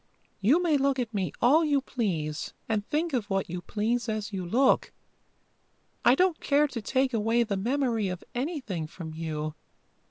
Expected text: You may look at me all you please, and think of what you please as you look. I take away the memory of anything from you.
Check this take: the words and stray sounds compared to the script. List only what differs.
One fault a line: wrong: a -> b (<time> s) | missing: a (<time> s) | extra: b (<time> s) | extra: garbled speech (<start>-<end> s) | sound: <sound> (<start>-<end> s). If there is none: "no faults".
extra: don't care to (6.1 s)